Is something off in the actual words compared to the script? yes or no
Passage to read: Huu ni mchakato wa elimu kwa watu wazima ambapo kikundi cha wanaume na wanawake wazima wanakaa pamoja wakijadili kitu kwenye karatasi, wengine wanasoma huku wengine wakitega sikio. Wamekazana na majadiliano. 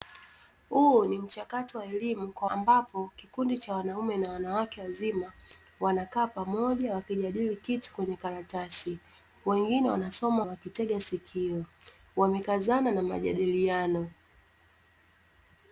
yes